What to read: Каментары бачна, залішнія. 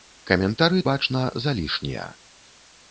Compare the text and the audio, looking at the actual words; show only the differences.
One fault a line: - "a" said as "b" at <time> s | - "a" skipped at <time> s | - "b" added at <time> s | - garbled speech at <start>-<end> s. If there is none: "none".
none